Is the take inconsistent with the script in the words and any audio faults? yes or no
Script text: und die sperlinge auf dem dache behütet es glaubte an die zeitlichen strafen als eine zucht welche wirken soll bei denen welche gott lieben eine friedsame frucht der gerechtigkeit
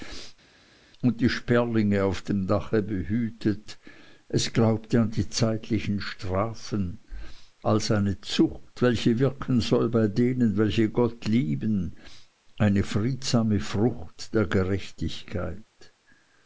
no